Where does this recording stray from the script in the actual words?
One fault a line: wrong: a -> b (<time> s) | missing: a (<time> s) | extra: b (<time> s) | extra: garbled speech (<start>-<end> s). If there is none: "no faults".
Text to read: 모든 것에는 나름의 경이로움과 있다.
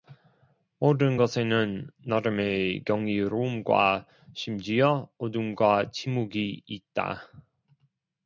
extra: 심지어 어둠과 침묵이 (4.3 s)